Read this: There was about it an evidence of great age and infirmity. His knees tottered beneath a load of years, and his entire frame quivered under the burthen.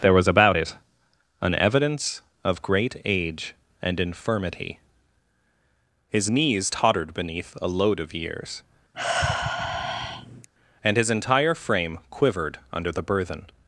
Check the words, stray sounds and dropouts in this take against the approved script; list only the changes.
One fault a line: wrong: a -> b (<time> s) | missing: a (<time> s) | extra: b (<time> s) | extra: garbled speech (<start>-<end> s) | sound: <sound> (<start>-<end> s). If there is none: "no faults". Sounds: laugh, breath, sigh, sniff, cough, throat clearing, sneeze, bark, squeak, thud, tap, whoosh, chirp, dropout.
sound: sigh (8.9-10.5 s)